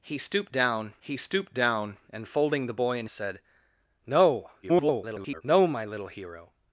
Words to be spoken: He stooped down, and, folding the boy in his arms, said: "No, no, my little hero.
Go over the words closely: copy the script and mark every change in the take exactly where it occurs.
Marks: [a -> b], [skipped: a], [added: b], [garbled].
He stooped down, [added: he stooped down] and, folding the boy in [skipped: his arms,] said: "No, [garbled] no, my little hero.